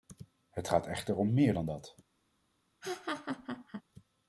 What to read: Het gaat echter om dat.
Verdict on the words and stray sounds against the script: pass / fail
fail